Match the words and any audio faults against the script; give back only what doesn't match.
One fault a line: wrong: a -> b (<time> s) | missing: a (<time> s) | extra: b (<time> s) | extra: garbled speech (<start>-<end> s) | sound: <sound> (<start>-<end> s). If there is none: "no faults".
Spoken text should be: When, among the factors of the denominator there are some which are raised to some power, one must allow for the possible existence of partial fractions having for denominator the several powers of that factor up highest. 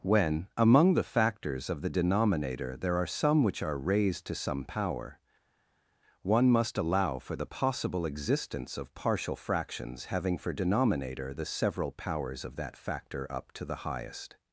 extra: to the (13.5 s)